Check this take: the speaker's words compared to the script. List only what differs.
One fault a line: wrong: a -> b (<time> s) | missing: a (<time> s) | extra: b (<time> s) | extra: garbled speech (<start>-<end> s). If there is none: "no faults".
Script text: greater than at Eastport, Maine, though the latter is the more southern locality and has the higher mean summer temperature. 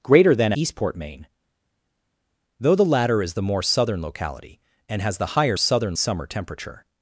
missing: at (0.5 s)
wrong: mean -> southern (5.6 s)